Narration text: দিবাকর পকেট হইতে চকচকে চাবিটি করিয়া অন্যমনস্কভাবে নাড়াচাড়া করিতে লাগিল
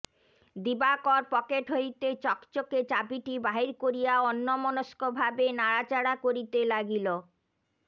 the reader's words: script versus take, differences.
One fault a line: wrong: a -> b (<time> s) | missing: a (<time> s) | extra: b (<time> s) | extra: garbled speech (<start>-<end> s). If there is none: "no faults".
extra: বাহির (3.5 s)